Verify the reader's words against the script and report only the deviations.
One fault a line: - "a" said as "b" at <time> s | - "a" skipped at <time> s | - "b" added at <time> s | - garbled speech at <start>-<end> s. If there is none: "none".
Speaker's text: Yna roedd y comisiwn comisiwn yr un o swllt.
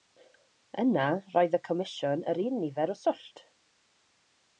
- "comisiwn" skipped at 2.2 s
- "nifer" added at 2.7 s